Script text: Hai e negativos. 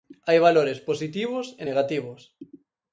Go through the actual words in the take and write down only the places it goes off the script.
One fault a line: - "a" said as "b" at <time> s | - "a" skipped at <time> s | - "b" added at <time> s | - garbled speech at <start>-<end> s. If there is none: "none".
- "valores positivos" added at 0.5 s